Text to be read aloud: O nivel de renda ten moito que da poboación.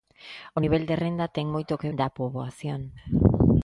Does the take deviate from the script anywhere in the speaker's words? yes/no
no